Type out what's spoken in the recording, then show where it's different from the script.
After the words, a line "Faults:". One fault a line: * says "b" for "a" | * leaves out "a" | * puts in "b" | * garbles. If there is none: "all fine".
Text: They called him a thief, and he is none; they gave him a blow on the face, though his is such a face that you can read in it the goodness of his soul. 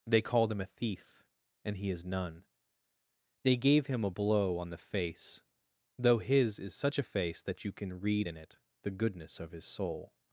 They called him a thief, and he is none; they gave him a blow on the face, though his is such a face that you can read in it the goodness of his soul.
Faults:
all fine